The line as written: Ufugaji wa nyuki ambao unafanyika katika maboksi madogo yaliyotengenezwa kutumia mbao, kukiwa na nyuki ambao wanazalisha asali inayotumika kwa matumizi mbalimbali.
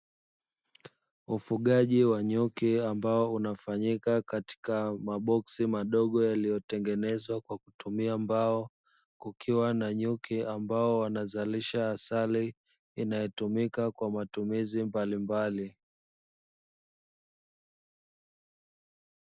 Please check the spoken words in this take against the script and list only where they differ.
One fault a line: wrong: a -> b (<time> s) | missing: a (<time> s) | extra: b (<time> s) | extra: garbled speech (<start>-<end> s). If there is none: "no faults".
extra: kwa (7.4 s)